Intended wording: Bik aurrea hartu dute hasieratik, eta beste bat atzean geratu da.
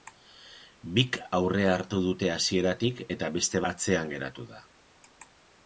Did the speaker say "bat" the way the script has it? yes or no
no